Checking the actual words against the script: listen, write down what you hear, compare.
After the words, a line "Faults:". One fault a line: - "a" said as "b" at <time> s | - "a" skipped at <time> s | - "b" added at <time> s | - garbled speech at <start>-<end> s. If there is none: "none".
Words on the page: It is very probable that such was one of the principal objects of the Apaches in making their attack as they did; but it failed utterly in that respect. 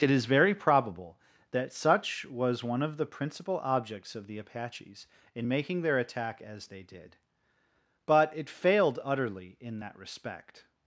It is very probable that such was one of the principal objects of the Apaches in making their attack as they did; but it failed utterly in that respect.
Faults:
none